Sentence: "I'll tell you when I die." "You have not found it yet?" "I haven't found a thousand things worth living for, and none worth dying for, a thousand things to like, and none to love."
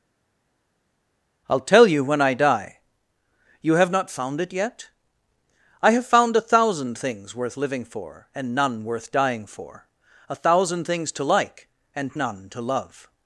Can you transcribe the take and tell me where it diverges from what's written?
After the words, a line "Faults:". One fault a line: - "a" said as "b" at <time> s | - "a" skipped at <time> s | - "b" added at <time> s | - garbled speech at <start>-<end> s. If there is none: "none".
"I'll tell you when I die." "You have not found it yet?" "I have found a thousand things worth living for, and none worth dying for, a thousand things to like, and none to love."
Faults:
- "haven't" said as "have" at 5.9 s